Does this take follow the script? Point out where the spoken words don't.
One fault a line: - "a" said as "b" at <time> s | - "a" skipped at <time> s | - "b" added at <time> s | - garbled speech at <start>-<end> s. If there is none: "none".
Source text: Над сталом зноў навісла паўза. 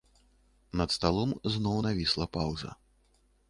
none